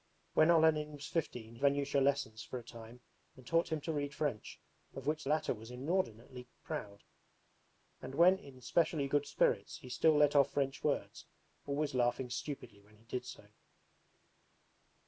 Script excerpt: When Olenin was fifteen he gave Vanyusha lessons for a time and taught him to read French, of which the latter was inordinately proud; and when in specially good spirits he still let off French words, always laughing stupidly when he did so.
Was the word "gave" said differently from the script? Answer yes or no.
yes